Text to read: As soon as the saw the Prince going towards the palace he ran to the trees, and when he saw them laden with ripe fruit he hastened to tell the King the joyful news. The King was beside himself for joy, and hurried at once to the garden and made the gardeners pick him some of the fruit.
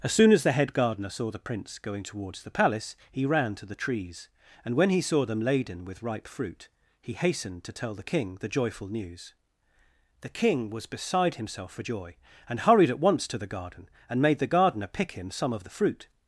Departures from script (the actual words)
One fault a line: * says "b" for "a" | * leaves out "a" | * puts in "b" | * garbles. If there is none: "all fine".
* puts in "head gardener"
* says "gardener" for "gardeners"